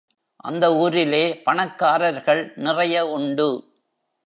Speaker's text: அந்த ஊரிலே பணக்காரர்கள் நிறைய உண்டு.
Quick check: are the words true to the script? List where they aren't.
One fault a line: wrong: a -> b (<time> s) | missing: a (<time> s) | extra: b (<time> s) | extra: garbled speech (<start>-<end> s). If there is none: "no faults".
no faults